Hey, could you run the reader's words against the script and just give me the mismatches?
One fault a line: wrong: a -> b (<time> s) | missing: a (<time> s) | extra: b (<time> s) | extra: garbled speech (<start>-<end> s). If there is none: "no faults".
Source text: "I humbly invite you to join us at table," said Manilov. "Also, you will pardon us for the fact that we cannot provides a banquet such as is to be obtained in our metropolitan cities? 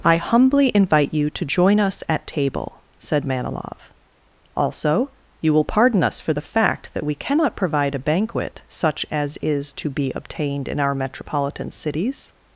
wrong: provides -> provide (7.5 s)